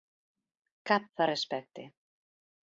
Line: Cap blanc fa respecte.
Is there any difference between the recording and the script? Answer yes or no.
yes